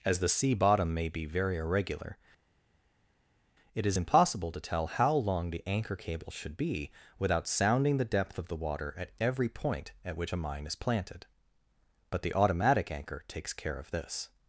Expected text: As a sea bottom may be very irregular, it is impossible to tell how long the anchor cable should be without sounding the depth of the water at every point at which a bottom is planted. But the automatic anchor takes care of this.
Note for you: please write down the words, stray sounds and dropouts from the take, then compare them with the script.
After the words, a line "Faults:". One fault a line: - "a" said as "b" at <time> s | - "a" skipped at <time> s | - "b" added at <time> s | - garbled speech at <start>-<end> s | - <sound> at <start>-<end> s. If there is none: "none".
As the sea bottom may be very irregular, it is impossible to tell how long the anchor cable should be without sounding the depth of the water at every point at which a mine is planted. But the automatic anchor takes care of this.
Faults:
- "a" said as "the" at 0.2 s
- "bottom" said as "mine" at 10.4 s